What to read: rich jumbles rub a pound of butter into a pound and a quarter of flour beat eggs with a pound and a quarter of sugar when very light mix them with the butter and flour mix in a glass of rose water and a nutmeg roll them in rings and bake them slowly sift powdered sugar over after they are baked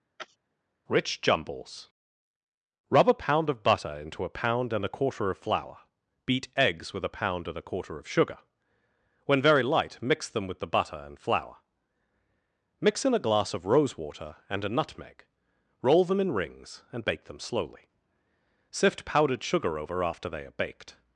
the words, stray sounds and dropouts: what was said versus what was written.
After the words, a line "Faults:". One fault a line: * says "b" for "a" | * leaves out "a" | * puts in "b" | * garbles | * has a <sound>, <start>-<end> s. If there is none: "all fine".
rich jumbles rub a pound of butter into a pound and a quarter of flour beat eggs with a pound and a quarter of sugar when very light mix them with the butter and flour mix in a glass of rose water and a nutmeg roll them in rings and bake them slowly sift powdered sugar over after they are baked
Faults:
* has a sneeze, 0.2-0.4 s